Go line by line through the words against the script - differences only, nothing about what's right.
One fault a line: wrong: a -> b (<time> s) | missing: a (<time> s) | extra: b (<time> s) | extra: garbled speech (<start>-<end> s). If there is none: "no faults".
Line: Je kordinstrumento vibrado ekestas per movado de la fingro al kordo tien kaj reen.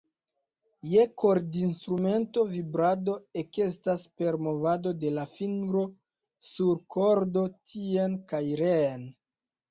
wrong: al -> sur (6.5 s)